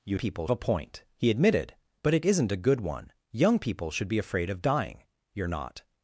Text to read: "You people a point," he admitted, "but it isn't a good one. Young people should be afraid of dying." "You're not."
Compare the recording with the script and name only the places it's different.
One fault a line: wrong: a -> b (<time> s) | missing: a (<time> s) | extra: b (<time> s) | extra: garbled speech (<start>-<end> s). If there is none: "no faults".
no faults